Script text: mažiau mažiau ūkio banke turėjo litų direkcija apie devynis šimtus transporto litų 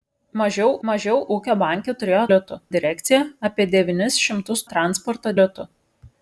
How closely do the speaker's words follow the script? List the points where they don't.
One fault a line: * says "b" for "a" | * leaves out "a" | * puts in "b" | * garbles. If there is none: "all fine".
all fine